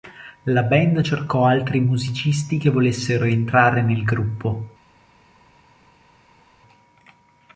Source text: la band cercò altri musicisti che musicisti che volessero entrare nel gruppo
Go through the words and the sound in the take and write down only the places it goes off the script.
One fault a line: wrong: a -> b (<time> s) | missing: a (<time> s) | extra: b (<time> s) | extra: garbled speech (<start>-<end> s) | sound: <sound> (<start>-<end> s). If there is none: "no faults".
missing: musicisti che (2.7 s)